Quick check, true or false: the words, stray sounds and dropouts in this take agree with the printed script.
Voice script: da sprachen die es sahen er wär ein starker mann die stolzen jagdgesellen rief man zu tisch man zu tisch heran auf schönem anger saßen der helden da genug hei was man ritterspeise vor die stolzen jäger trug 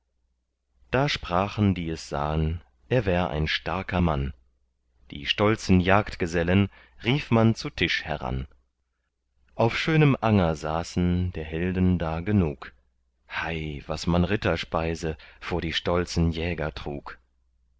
false